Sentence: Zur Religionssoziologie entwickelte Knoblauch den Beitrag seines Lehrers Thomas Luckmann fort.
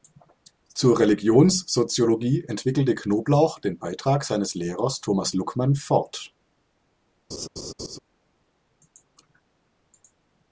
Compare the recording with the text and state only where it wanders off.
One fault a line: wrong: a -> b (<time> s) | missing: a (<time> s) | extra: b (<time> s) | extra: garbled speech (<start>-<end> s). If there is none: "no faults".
no faults